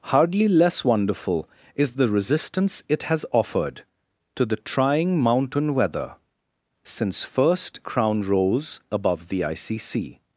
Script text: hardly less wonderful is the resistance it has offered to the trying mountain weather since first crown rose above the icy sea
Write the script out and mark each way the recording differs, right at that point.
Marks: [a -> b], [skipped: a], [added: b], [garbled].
hardly less wonderful is the resistance it has offered to the trying mountain weather since first crown rose above the icy sea